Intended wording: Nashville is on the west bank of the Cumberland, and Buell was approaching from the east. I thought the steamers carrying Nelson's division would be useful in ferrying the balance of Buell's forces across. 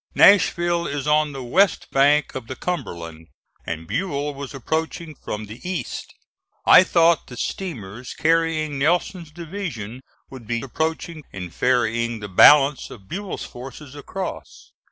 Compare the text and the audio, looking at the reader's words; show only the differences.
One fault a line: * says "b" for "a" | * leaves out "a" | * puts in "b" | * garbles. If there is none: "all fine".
* says "approaching" for "useful"